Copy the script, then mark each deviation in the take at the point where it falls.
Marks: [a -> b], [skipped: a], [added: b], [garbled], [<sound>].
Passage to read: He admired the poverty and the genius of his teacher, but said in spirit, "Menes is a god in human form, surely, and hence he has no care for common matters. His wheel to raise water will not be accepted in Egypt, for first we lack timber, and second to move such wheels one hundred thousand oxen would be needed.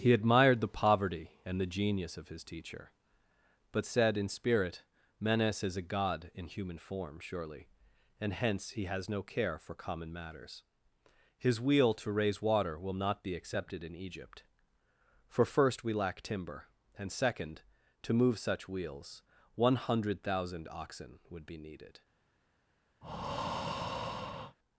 He admired the poverty and the genius of his teacher, but said in spirit, "Menes is a god in human form, surely, and hence he has no care for common matters. His wheel to raise water will not be accepted in Egypt, for first we lack timber, and second to move such wheels one hundred thousand oxen would be needed. [breath]